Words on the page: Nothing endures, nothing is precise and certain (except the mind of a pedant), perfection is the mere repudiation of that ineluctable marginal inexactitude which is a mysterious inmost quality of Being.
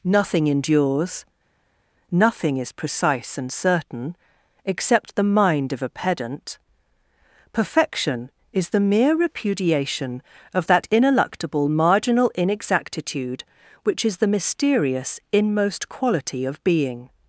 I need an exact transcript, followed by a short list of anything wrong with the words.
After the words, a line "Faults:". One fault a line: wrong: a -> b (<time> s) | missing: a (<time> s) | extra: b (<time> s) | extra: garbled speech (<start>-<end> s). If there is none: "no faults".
Nothing endures, nothing is precise and certain (except the mind of a pedant), perfection is the mere repudiation of that ineluctable marginal inexactitude which is the mysterious inmost quality of Being.
Faults:
wrong: a -> the (14.2 s)